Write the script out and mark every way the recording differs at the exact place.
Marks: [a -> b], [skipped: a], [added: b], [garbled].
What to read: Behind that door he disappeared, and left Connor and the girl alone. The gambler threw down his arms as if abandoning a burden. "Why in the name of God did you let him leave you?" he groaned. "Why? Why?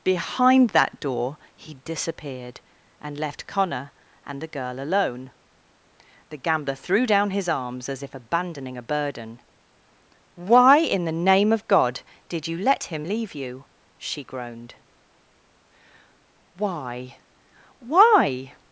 Behind that door he disappeared, and left Connor and the girl alone. The gambler threw down his arms as if abandoning a burden. "Why in the name of God did you let him leave you?" [he -> she] groaned. "Why? Why?